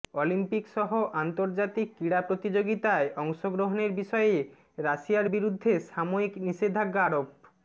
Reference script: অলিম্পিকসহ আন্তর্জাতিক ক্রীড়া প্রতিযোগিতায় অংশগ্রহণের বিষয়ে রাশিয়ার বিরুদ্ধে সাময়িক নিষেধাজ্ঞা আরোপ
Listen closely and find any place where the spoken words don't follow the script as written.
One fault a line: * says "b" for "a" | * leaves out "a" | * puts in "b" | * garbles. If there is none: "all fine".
all fine